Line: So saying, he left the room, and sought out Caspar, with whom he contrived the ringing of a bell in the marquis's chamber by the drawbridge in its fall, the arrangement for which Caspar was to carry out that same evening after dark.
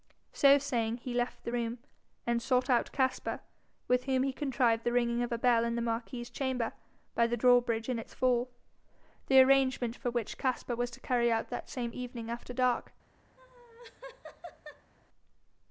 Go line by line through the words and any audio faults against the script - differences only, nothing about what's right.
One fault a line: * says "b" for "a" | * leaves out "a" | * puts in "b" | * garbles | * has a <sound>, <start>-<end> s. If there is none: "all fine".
* has a laugh, 13.4-14.9 s